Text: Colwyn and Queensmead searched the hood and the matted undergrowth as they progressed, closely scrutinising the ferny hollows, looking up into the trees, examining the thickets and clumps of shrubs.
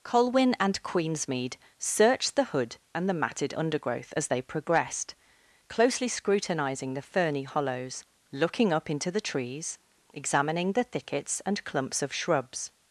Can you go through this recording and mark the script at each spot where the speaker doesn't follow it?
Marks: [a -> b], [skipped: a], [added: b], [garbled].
Colwyn and Queensmead searched the hood and the matted undergrowth as they progressed, closely scrutinising the ferny hollows, looking up into the trees, examining the thickets and clumps of shrubs.